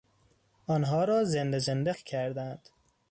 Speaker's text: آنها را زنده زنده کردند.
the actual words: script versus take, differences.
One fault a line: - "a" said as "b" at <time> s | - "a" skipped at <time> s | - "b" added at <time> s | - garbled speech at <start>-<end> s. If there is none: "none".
none